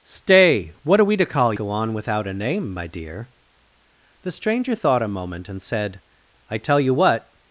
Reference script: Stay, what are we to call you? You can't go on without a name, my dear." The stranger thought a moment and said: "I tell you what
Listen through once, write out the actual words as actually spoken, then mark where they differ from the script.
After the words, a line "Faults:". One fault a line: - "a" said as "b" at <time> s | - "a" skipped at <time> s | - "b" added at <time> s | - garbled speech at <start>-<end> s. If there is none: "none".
Stay, what are we to call go on without a name, my dear." The stranger thought a moment and said: "I tell you what
Faults:
- "you You can't" skipped at 1.5 s